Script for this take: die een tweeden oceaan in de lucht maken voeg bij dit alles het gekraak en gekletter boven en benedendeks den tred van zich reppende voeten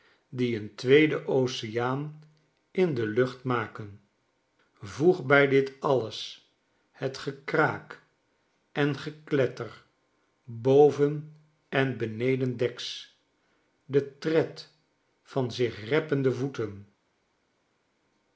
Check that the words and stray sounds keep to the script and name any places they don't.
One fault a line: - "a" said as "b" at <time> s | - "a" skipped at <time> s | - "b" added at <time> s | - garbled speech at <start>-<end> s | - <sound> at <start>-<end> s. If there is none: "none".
none